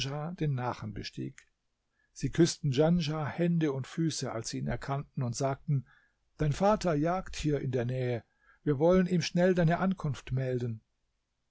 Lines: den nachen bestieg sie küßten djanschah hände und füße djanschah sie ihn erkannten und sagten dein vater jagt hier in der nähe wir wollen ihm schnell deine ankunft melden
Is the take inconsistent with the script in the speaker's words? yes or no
yes